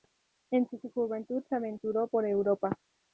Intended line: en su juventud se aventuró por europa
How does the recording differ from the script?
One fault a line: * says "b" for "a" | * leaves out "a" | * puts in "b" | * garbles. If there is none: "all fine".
* puts in "su"